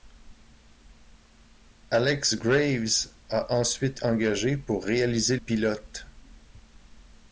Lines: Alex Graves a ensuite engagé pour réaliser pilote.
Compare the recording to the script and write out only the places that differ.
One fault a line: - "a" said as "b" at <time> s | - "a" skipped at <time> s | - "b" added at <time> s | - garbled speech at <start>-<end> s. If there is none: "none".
none